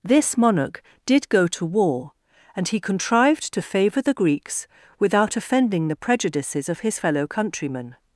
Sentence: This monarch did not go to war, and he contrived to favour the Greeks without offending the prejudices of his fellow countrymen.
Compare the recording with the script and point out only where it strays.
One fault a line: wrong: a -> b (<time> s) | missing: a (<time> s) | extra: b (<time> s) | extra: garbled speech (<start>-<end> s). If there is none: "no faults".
missing: not (1.3 s)